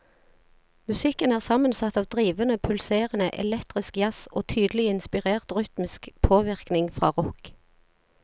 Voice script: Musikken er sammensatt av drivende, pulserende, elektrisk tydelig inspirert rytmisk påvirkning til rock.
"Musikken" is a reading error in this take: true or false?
false